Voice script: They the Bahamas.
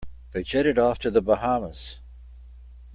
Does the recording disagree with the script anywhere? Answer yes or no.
yes